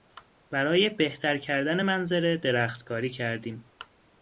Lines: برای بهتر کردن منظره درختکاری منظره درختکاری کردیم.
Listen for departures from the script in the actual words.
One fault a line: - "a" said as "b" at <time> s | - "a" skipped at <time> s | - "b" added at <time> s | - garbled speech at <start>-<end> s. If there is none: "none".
- "منظره درختکاری" skipped at 3.1 s